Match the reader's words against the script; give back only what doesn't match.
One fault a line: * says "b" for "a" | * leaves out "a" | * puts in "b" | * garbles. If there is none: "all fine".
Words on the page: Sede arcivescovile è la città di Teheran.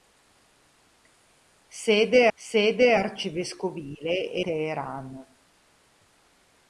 * puts in "sede"
* leaves out "la città di"